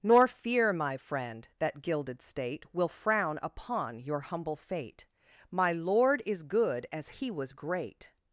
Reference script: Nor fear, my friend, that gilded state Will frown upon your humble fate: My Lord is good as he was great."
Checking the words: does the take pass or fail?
pass